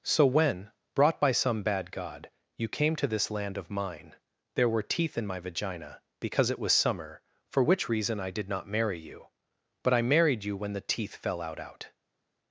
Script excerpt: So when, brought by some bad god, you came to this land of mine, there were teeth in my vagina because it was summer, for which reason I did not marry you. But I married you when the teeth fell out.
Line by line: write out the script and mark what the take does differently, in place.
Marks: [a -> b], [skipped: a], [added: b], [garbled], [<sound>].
So when, brought by some bad god, you came to this land of mine, there were teeth in my vagina because it was summer, for which reason I did not marry you. But I married you when the teeth fell out. [added: out]